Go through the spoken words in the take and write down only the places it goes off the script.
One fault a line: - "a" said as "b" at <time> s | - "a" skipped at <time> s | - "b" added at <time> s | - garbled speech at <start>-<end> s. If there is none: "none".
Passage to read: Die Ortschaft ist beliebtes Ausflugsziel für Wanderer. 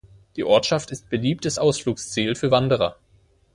none